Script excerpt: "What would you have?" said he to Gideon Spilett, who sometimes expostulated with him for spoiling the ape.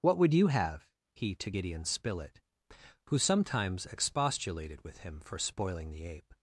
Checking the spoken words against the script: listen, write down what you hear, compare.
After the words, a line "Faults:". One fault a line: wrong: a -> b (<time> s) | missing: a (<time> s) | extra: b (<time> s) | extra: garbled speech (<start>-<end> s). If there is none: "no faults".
"What would you have?" he to Gideon Spilett, who sometimes expostulated with him for spoiling the ape.
Faults:
missing: said (0.9 s)